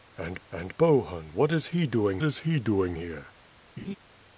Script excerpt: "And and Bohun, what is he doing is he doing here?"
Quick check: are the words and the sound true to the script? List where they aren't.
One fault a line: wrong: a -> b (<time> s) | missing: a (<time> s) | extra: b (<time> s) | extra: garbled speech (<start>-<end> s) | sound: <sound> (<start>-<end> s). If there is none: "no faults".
sound: laugh (3.8-4.0 s)